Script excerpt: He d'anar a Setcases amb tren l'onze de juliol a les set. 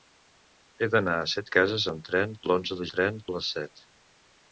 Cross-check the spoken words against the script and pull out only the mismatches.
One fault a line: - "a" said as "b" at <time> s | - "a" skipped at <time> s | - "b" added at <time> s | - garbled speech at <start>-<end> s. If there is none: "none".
- "juliol" said as "tren" at 2.9 s